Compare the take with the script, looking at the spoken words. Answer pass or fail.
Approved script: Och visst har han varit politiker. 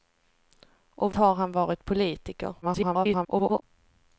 fail